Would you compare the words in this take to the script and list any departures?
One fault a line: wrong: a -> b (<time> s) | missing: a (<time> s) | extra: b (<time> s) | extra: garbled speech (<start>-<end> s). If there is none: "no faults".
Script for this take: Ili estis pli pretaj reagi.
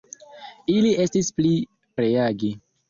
missing: pretaj (1.5 s)